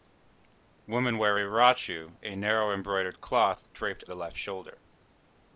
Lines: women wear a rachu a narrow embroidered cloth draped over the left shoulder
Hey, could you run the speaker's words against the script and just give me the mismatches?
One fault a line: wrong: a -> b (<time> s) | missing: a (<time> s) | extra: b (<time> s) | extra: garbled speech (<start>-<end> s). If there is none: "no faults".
missing: over (4.1 s)